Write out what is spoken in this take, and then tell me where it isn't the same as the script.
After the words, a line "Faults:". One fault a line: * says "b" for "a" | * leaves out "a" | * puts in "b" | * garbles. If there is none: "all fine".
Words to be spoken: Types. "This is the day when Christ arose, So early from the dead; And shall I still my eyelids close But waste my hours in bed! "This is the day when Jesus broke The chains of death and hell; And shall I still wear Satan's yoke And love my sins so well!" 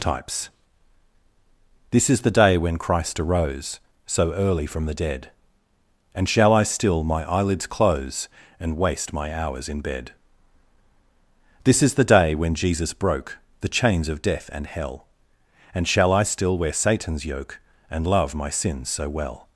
Types. "This is the day when Christ arose, So early from the dead; And shall I still my eyelids close And waste my hours in bed! "This is the day when Jesus broke The chains of death and hell; And shall I still wear Satan's yoke And love my sins so well!"
Faults:
* says "And" for "But"